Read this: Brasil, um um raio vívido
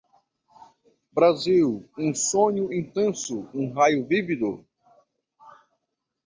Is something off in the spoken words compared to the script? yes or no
yes